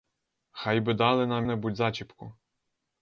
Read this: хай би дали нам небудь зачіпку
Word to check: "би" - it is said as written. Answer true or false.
true